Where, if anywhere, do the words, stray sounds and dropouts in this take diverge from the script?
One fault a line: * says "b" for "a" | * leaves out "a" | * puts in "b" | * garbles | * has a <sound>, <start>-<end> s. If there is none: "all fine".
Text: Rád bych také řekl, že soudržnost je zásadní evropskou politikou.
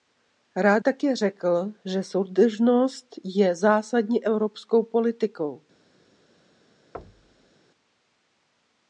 * leaves out "bych"
* has a thud, 6.9-7.5 s